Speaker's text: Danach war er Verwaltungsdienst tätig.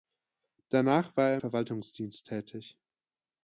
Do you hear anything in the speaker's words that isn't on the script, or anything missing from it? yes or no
no